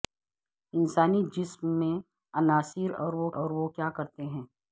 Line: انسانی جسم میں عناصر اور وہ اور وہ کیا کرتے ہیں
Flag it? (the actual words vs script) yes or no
no